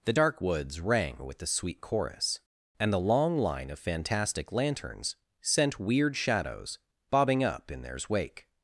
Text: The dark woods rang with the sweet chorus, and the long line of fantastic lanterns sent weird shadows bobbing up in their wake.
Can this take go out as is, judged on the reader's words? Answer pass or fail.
fail